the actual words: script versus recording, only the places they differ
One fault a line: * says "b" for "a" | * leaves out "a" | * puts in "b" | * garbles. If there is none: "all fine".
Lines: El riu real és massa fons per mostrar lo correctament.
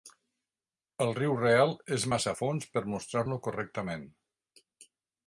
all fine